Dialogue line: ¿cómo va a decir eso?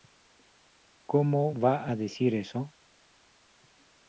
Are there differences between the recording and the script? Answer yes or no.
no